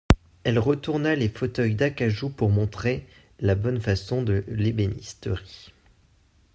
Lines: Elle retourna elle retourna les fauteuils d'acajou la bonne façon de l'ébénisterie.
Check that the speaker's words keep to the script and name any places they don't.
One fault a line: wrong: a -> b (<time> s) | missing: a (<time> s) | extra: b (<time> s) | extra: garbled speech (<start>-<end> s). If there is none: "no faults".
missing: elle retourna (1.1 s)
extra: pour montrer (2.3 s)